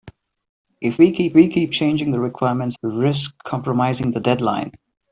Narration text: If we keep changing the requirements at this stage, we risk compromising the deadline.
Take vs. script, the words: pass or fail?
fail